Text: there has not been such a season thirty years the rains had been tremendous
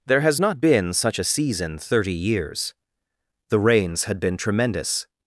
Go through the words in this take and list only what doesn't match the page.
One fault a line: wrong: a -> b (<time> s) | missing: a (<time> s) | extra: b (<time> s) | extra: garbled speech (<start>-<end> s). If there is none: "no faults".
no faults